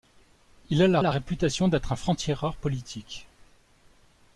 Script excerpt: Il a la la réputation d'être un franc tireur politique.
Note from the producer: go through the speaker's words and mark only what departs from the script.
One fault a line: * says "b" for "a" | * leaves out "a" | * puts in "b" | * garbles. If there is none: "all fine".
all fine